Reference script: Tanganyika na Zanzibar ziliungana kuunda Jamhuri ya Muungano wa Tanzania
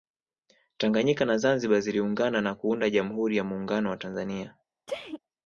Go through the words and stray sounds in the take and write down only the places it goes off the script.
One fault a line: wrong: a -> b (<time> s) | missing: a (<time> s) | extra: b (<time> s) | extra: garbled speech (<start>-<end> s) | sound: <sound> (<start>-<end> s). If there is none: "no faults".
extra: na (2.4 s)
sound: sneeze (4.9-5.2 s)